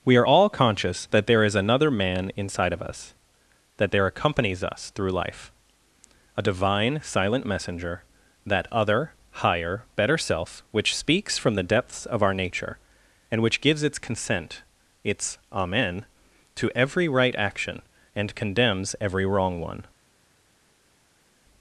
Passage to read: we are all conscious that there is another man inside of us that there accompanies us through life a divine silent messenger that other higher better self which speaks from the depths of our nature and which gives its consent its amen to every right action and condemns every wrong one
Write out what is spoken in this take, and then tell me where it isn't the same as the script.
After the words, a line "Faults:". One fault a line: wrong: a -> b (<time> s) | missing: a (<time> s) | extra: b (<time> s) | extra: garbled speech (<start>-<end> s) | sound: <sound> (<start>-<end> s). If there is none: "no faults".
we are all conscious that there is another man inside of us that there accompanies us through life a divine silent messenger that other higher better self which speaks from the depths of our nature and which gives its consent its amen to every right action and condemns every wrong one
Faults:
no faults